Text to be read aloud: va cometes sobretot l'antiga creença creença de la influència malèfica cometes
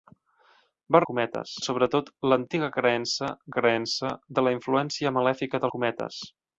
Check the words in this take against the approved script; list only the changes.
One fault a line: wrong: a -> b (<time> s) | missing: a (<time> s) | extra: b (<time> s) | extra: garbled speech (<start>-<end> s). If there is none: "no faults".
no faults